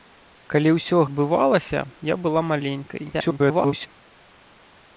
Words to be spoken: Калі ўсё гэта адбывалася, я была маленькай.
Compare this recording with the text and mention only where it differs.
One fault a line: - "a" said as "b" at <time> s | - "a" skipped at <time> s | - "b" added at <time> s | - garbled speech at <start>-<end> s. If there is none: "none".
- "гэта" skipped at 1.0 s
- garbled speech at 3.1-3.9 s